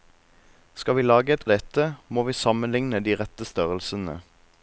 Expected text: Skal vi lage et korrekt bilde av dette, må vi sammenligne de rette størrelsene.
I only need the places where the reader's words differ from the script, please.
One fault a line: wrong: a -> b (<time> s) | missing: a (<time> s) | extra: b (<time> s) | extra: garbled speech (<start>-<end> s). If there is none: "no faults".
missing: korrekt bilde (1.4 s)